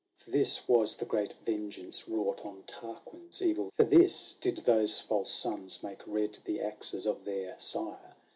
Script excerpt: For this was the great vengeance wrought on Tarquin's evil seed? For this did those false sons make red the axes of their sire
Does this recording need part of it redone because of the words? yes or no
yes